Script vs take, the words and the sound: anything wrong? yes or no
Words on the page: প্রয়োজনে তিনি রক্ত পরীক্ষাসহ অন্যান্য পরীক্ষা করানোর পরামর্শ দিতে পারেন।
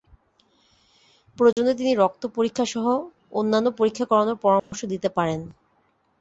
yes